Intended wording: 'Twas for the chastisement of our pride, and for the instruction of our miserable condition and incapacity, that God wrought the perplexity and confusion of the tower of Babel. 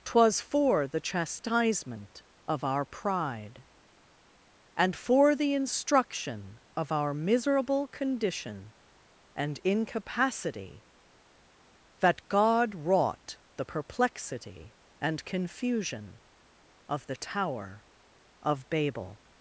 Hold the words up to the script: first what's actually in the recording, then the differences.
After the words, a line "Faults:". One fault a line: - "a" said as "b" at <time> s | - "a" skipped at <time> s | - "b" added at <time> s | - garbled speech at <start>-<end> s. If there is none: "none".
'Twas for the chastisement of our pride, and for the instruction of our miserable condition and incapacity, that God wrought the perplexity and confusion of the tower of Babel.
Faults:
none